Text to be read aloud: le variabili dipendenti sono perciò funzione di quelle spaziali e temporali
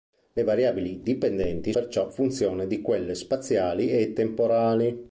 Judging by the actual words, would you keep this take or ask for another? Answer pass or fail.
fail